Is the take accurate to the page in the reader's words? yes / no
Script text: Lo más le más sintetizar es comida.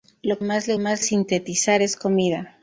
yes